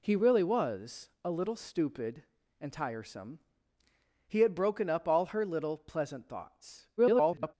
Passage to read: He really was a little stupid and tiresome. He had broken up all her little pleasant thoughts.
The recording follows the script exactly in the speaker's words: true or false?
false